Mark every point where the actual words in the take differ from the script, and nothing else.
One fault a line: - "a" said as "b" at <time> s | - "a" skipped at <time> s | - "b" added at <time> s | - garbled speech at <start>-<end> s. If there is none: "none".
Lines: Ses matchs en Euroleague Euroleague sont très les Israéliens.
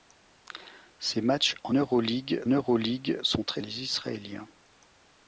none